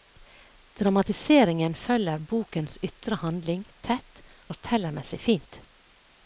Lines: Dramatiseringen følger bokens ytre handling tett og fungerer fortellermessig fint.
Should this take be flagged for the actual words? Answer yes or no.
yes